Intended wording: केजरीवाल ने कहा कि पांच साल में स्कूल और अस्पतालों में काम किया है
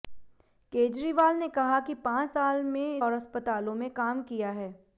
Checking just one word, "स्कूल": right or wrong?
wrong